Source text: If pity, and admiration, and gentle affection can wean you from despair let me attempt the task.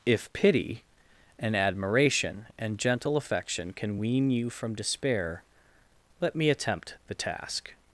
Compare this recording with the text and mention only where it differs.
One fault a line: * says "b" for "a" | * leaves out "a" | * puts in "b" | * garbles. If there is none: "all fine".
all fine